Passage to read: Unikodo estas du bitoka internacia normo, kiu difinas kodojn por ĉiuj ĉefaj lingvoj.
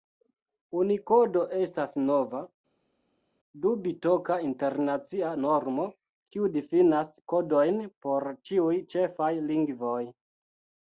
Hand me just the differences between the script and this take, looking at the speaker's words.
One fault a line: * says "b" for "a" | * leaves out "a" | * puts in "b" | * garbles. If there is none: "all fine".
* puts in "nova"